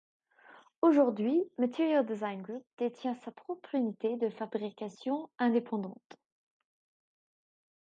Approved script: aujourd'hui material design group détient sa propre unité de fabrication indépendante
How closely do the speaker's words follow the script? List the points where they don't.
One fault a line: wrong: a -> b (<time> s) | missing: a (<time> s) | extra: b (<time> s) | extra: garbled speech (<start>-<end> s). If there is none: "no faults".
no faults